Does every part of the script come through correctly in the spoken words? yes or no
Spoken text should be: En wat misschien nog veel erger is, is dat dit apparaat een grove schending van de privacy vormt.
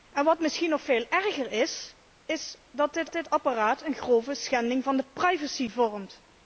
no